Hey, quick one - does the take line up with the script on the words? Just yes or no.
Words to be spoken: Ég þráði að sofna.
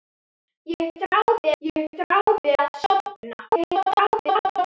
no